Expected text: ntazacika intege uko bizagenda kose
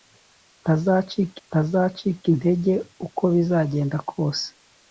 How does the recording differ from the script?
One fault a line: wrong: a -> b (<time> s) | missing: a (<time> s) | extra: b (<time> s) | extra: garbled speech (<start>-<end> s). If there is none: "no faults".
extra: ntazacika (1.5 s)